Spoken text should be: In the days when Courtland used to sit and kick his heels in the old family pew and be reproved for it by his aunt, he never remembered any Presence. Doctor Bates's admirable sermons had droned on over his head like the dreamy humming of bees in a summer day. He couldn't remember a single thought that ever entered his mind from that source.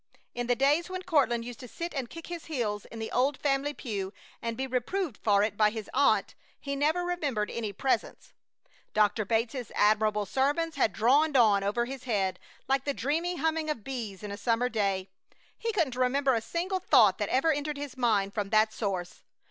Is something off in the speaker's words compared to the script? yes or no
no